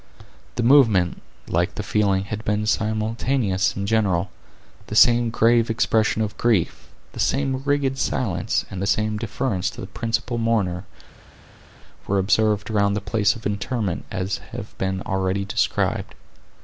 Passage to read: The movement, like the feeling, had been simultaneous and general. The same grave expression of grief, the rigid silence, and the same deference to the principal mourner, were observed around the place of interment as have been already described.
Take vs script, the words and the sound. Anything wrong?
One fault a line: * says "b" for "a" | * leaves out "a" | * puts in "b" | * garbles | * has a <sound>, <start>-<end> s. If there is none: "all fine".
* puts in "same"